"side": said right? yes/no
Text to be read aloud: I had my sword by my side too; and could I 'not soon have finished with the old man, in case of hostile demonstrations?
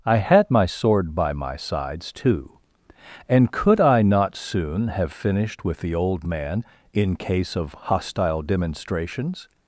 no